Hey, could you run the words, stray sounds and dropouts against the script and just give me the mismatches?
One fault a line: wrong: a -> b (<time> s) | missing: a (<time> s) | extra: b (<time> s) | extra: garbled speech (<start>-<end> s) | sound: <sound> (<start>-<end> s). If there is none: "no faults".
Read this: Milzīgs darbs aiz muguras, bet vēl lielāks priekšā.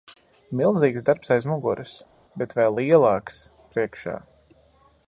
no faults